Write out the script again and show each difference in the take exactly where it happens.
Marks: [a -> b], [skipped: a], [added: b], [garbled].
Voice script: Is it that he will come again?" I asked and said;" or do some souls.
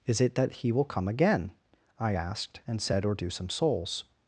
Is it that he will come again?" I asked and said;" or do some souls.